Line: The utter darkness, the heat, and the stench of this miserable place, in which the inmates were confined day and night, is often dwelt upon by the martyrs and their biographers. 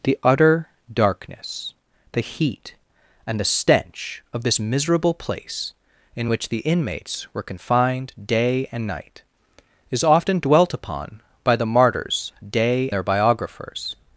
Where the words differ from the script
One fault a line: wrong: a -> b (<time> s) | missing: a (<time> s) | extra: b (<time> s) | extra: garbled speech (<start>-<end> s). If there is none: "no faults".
wrong: and -> day (12.5 s)